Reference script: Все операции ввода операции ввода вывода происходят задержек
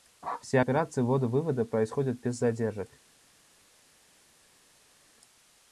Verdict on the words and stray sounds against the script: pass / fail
fail